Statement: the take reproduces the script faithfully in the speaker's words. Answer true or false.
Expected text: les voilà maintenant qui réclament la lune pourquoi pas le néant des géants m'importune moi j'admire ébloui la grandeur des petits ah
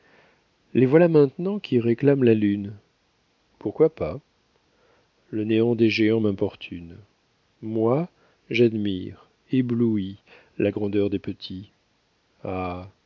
true